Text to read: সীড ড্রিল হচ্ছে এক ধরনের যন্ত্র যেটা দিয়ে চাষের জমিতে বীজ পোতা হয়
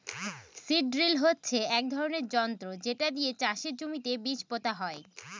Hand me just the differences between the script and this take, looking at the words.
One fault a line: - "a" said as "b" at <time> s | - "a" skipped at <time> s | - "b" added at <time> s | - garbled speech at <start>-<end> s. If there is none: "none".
none